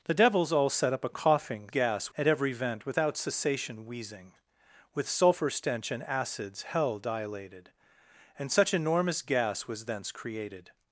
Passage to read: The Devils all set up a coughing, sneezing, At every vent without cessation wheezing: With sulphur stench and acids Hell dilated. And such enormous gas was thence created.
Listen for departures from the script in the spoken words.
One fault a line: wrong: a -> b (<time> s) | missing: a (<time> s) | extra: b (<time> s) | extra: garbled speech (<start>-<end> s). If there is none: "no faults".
wrong: sneezing -> gas (1.7 s)